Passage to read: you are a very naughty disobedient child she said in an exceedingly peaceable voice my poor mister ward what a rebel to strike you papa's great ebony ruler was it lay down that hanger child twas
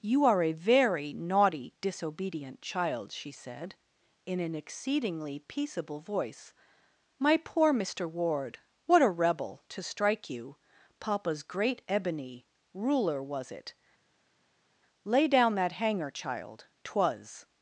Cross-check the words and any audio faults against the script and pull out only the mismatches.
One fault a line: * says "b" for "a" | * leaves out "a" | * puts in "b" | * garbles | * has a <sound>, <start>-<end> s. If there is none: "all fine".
all fine